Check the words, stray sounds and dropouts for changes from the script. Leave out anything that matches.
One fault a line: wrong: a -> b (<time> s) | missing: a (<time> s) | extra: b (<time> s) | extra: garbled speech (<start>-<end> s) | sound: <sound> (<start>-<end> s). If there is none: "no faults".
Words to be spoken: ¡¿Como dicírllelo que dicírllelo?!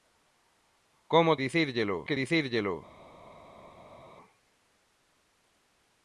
no faults